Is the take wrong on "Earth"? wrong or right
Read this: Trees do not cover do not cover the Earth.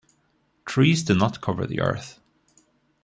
right